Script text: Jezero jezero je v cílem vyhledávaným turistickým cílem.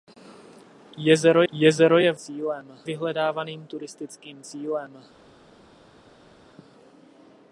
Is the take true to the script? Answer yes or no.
yes